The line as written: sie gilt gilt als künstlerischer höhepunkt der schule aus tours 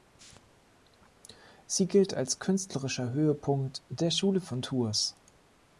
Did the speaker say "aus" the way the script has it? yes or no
no